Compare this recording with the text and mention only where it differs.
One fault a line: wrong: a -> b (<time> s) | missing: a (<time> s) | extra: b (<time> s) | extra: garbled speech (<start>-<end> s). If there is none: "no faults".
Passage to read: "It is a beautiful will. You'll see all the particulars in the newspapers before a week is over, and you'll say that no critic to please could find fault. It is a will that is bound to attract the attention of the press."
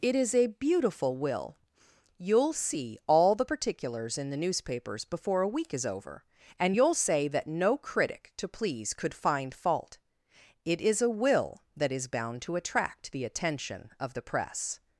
no faults